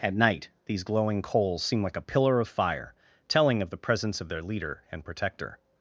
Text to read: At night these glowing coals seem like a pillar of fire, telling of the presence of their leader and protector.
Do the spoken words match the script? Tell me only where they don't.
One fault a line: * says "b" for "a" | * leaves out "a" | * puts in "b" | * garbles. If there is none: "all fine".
all fine